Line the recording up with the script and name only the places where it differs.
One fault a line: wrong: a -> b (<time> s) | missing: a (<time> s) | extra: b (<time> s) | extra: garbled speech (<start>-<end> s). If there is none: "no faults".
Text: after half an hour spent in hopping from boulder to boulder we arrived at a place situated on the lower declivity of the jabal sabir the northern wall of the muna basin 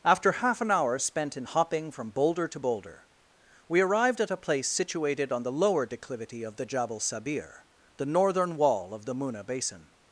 no faults